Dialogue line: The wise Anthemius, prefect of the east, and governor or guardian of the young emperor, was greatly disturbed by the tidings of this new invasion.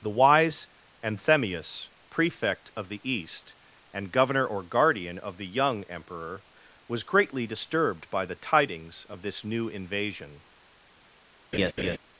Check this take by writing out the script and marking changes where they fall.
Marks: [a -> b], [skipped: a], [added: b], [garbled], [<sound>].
The wise Anthemius, prefect of the east, and governor or guardian of the young emperor, was greatly disturbed by the tidings of this new invasion. [laugh]